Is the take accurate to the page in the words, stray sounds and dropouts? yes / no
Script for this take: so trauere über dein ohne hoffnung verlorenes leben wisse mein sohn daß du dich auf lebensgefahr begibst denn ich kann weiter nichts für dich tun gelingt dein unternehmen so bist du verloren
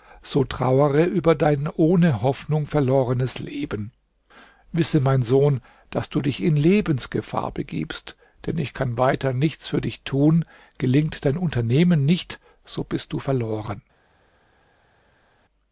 no